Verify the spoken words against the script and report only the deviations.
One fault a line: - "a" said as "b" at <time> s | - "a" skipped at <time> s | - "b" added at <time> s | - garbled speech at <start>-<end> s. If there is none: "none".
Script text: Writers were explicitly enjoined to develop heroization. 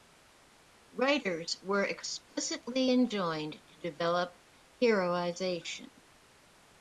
none